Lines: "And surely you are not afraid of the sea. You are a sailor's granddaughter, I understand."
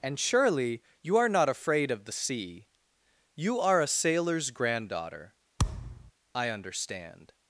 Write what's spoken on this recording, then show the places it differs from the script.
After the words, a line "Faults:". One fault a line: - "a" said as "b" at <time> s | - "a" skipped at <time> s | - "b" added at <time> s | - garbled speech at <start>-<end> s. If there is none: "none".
"And surely you are not afraid of the sea. You are a sailor's granddaughter, I understand."
Faults:
none